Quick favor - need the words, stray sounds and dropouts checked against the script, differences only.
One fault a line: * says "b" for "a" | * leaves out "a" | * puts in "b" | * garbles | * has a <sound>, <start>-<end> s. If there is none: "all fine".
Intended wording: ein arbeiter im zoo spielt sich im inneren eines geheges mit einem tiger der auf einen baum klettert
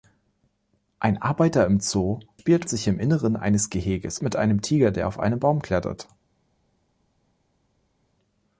all fine